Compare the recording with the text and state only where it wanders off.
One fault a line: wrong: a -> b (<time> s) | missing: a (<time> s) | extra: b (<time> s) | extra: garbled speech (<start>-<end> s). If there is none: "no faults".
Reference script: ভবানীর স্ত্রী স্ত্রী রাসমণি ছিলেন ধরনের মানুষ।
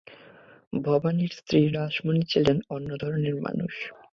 missing: স্ত্রী (1.6 s)
extra: অন্য (2.7 s)